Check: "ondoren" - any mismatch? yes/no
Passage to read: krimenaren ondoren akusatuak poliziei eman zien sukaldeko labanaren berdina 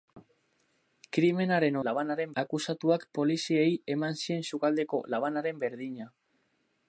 yes